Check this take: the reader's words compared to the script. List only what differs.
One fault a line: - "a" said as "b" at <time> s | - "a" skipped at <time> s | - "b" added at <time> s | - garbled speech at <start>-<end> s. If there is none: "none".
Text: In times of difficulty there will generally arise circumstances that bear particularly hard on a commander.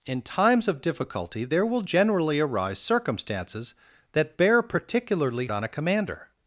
- "hard" skipped at 5.5 s